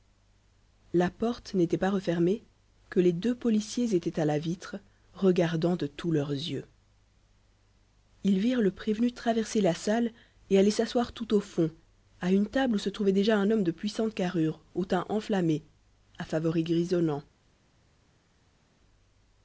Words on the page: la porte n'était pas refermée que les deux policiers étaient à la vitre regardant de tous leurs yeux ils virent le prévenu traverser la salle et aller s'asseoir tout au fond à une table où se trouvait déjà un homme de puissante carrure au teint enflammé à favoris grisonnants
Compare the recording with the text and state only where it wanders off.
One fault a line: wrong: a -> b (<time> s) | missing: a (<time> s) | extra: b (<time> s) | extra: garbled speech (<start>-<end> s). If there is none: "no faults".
no faults